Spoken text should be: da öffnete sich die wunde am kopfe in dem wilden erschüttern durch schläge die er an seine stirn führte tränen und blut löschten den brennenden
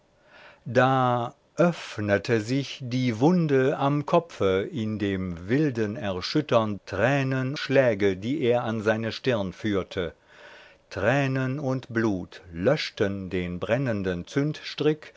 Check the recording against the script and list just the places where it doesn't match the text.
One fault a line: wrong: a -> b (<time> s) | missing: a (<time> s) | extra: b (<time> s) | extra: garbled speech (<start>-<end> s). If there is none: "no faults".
wrong: durch -> tränen (6.9 s)